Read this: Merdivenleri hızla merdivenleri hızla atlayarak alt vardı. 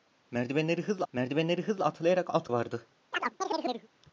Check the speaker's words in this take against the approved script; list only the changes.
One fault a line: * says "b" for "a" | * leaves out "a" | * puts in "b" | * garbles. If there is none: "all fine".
all fine